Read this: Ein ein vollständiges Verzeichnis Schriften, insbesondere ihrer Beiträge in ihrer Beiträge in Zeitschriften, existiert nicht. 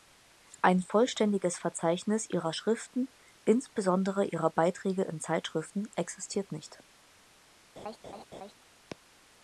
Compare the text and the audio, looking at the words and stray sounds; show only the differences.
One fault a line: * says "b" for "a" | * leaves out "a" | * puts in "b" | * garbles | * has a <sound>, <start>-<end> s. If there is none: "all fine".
* leaves out "ein"
* puts in "ihrer"
* leaves out "ihrer Beiträge in"
* has a laugh, 7.8-8.5 s